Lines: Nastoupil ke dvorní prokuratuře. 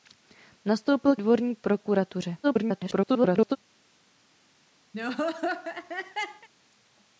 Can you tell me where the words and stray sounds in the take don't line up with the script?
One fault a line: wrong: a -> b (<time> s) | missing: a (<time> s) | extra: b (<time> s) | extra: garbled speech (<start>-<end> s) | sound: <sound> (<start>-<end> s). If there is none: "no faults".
missing: ke (1.1 s)
extra: garbled speech (2.4-3.6 s)
sound: laugh (4.9-6.5 s)